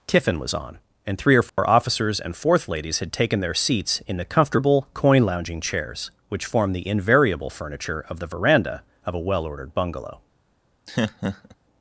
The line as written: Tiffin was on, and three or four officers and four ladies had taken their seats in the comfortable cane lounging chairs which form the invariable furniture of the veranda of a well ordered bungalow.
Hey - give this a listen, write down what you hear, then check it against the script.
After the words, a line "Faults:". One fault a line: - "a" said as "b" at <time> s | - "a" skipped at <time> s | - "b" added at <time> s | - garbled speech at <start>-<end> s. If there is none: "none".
Tiffin was on, and three or four officers and fourth ladies had taken their seats in the comfortable coin lounging chairs which form the invariable furniture of the veranda of a well ordered bungalow.
Faults:
- "four" said as "fourth" at 2.3 s
- "cane" said as "coin" at 4.9 s